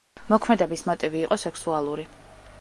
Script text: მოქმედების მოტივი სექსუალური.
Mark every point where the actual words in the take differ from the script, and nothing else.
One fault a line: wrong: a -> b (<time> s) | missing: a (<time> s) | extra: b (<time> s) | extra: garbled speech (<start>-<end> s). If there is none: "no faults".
extra: იყო (1.3 s)